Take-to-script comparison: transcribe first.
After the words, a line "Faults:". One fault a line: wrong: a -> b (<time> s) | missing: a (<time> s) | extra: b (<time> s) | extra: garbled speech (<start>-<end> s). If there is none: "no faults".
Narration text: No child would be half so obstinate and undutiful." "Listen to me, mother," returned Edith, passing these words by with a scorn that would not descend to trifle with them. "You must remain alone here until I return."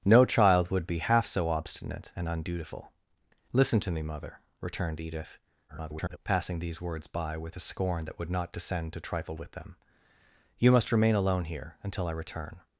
No child would be half so obstinate and undutiful." "Listen to me, mother," returned Edith, [garbled] passing these words by with a scorn that would not descend to trifle with them. "You must remain alone here until I return."
Faults:
extra: garbled speech (5.7-6.2 s)